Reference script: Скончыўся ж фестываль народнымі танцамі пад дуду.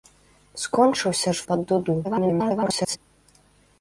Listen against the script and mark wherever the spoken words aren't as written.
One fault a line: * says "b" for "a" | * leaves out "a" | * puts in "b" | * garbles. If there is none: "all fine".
* leaves out "фестываль народнымі танцамі"
* garbles